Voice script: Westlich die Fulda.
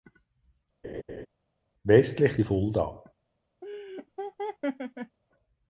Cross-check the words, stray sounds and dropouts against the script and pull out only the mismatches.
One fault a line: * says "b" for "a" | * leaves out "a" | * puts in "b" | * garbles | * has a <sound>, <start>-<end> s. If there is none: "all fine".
* has a laugh, 0.8-1.3 s
* has a laugh, 3.6-5.2 s